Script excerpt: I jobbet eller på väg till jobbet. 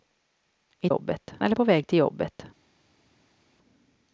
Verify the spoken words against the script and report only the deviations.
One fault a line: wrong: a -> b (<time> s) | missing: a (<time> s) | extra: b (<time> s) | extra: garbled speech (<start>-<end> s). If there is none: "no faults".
no faults